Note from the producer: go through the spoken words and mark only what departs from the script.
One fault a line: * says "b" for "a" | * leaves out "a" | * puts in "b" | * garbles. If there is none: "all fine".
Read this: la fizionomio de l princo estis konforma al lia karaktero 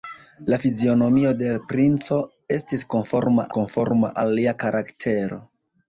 * puts in "konforma"